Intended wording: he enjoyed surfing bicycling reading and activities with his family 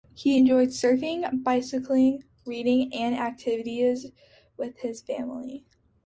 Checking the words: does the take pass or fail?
pass